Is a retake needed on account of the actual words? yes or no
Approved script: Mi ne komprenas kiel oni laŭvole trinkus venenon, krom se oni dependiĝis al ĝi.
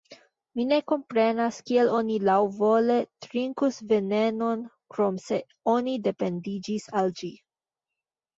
no